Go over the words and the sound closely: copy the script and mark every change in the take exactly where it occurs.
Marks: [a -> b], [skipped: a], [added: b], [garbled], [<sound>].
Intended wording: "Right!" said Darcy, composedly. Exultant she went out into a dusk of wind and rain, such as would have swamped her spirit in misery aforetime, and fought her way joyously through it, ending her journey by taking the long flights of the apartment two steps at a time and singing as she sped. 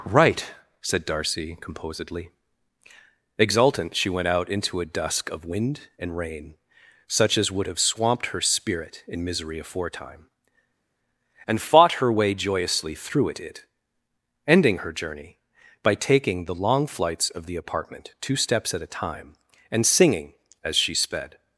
"Right!" said Darcy, composedly. Exultant she went out into a dusk of wind and rain, such as would have swamped her spirit in misery aforetime, and fought her way joyously through it, [added: it] ending her journey by taking the long flights of the apartment two steps at a time and singing as she sped.